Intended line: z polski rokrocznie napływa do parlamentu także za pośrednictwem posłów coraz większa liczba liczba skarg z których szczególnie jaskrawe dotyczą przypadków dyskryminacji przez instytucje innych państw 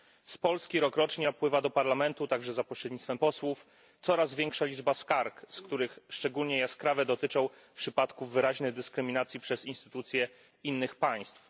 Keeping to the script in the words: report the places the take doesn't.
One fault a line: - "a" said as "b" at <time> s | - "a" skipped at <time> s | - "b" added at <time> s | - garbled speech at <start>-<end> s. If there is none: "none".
- "liczba" skipped at 4.9 s
- "wyraźnej" added at 8.3 s